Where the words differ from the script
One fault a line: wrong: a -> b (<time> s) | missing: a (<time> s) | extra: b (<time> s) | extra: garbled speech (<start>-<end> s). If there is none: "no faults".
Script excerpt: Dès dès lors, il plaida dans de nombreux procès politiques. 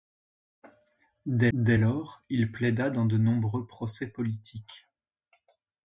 no faults